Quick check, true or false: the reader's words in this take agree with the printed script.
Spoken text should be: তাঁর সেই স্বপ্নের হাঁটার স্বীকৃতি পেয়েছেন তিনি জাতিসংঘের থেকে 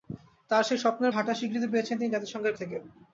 true